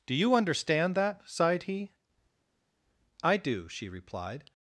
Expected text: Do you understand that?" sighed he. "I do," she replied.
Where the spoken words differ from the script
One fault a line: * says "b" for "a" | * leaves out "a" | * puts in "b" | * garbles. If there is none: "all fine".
all fine